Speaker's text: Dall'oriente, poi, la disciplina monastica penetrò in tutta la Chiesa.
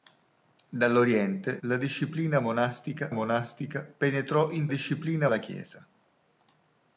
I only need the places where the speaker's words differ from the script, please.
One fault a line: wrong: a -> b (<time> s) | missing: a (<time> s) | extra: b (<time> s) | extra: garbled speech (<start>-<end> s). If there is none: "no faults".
missing: poi (1.6 s)
extra: monastica (3.1 s)
wrong: tutta -> disciplina (4.7 s)